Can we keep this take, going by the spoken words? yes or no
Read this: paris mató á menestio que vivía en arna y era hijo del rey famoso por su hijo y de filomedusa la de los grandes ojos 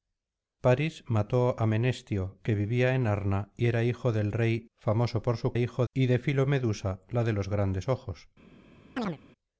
yes